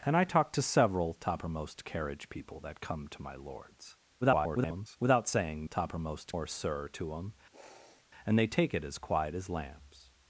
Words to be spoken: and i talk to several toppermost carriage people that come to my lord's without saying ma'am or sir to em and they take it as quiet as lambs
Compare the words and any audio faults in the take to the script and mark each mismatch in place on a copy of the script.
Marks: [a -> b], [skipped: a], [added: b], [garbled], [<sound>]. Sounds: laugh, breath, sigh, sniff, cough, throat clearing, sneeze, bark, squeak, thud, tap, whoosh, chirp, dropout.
and i talk to several toppermost carriage people that come to my lord's [garbled] without saying [ma'am -> toppermost] or sir to em [sniff] and they take it as quiet as lambs